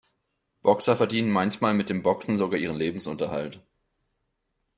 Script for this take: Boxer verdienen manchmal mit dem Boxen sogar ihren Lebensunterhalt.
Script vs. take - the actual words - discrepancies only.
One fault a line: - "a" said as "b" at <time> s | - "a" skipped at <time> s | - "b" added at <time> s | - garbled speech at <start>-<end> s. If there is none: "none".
none